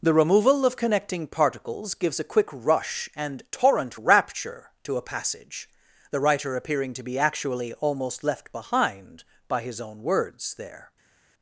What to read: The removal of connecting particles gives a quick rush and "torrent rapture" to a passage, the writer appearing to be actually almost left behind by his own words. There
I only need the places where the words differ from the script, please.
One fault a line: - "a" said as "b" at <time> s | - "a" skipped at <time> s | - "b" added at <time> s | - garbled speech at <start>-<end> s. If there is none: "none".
none